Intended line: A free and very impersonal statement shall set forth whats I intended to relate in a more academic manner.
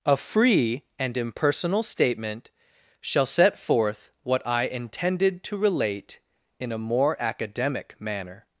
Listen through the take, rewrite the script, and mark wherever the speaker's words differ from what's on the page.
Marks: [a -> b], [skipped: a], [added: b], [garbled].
A free and [skipped: very] impersonal statement shall set forth [whats -> what] I intended to relate in a more academic manner.